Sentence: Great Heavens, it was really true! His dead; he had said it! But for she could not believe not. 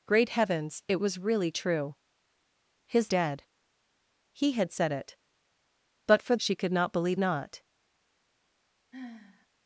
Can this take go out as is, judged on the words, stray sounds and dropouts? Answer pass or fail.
fail